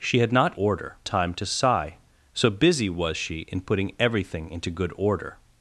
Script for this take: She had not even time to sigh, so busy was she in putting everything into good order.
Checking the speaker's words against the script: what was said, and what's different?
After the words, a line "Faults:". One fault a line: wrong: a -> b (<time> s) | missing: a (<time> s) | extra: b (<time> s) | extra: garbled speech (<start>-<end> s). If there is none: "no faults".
She had not order time to sigh, so busy was she in putting everything into good order.
Faults:
wrong: even -> order (0.5 s)